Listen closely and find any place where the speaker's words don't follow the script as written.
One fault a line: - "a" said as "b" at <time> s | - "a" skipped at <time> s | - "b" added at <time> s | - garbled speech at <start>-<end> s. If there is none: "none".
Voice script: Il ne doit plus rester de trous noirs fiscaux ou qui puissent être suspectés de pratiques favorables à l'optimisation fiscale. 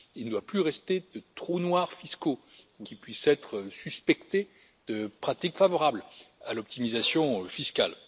none